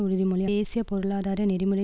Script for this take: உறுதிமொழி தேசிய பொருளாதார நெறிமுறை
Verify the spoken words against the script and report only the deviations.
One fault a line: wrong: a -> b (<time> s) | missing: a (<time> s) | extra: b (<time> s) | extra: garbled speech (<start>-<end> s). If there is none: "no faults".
no faults